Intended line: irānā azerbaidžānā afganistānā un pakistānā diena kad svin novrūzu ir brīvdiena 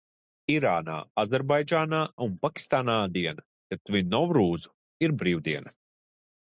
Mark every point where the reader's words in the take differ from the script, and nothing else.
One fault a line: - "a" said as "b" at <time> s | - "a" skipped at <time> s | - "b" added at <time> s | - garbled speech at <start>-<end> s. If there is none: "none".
- "afganistānā" skipped at 2.0 s